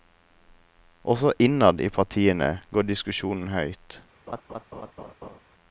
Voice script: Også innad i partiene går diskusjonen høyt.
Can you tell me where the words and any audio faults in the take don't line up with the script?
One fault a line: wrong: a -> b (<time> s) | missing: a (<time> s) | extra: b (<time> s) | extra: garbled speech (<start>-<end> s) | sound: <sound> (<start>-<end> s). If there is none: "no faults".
sound: laugh (4.3-5.4 s)